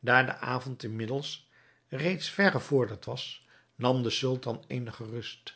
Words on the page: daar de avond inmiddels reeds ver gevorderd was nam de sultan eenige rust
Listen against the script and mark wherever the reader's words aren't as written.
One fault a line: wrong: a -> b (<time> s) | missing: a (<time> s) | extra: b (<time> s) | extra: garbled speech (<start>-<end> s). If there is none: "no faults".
no faults